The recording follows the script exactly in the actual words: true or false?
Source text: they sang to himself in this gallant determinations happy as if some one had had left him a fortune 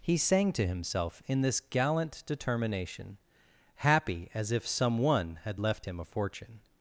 false